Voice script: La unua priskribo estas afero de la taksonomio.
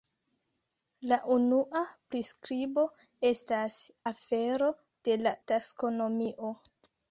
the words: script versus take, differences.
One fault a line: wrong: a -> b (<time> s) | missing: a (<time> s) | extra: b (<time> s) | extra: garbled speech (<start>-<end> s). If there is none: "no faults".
no faults